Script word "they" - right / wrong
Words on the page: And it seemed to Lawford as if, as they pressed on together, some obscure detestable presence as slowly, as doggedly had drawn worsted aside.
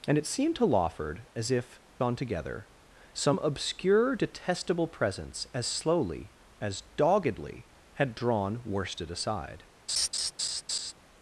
wrong